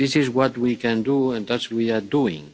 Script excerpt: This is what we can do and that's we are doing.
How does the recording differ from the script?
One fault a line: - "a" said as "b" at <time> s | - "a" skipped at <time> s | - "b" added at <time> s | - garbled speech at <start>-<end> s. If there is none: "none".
none